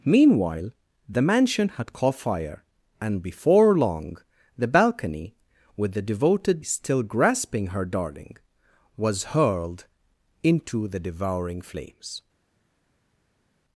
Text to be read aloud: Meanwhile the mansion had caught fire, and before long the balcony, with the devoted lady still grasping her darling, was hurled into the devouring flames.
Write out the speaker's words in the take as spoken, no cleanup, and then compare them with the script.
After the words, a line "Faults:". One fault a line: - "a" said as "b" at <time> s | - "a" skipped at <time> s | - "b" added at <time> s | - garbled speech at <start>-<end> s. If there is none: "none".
Meanwhile the mansion had caught fire, and before long the balcony, with the devoted still grasping her darling, was hurled into the devouring flames.
Faults:
- "lady" skipped at 6.7 s